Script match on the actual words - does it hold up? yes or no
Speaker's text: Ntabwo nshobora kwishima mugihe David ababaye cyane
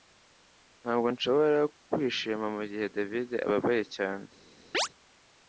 yes